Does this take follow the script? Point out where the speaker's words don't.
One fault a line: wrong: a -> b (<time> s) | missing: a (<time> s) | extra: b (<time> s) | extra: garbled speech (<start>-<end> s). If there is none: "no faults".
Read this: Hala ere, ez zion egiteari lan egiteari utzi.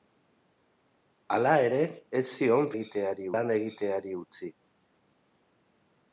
no faults